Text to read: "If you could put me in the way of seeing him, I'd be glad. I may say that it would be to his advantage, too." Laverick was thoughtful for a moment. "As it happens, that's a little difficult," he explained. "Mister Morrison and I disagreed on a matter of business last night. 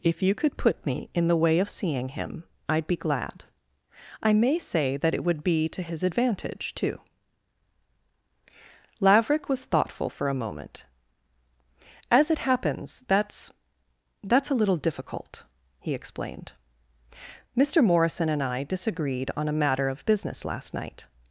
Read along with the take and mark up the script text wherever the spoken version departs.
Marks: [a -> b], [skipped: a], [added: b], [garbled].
"If you could put me in the way of seeing him, I'd be glad. I may say that it would be to his advantage, too." Laverick was thoughtful for a moment. "As it happens, that's [added: that's] a little difficult," he explained. "Mister Morrison and I disagreed on a matter of business last night.